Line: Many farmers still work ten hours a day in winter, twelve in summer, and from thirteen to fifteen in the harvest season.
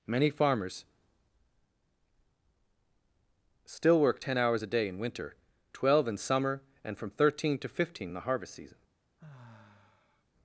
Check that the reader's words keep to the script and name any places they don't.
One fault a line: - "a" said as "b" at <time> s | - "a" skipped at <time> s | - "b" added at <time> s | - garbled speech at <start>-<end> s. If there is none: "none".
none